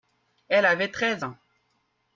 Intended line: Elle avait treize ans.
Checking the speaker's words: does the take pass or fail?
pass